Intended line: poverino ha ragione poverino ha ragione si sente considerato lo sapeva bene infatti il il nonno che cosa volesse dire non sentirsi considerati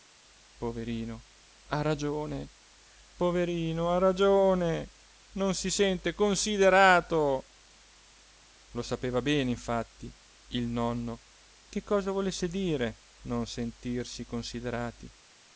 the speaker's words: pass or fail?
fail